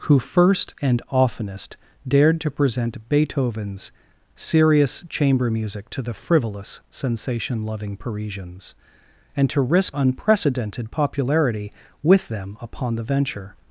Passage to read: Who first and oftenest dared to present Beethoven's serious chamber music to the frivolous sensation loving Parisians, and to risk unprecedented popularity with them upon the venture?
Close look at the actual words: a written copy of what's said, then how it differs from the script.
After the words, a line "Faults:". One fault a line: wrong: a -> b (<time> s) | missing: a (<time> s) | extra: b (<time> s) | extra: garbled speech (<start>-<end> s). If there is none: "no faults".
Who first and oftenest dared to present Beethoven's serious chamber music to the frivolous sensation loving Parisians, and to risk unprecedented popularity with them upon the venture?
Faults:
no faults